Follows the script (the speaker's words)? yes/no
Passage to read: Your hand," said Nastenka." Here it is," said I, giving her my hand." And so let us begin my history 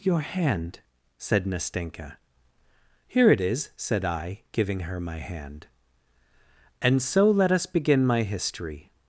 yes